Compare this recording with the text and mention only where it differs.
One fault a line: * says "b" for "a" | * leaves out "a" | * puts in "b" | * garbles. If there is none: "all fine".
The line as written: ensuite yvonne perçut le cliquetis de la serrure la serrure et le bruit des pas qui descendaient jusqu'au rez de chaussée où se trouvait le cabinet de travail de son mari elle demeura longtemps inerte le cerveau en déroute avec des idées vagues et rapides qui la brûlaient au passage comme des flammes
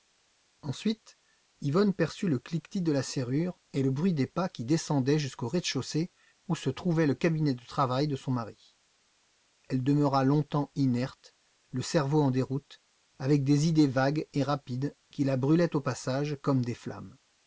* leaves out "la serrure"